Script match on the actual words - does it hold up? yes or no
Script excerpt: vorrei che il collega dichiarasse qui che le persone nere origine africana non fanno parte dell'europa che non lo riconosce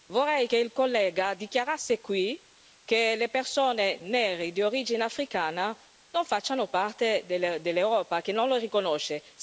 no